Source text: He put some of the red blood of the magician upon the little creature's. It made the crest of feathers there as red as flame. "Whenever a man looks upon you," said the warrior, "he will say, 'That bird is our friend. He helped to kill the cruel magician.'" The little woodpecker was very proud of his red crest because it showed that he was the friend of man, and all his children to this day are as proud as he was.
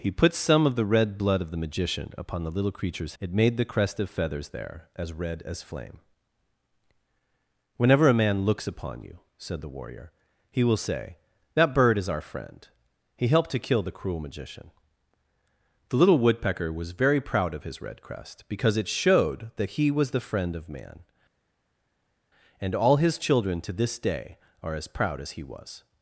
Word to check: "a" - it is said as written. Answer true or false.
true